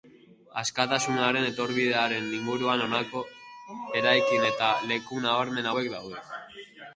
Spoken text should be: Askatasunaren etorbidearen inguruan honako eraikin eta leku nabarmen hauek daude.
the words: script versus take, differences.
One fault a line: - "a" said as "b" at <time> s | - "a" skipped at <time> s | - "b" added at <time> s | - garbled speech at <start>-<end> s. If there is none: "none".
none